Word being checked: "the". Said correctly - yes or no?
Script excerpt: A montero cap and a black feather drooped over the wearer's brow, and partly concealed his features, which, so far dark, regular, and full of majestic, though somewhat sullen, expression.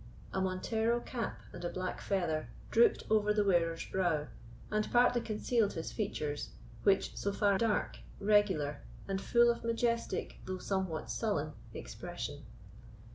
yes